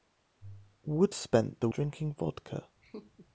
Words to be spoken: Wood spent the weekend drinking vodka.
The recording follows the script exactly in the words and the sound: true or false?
false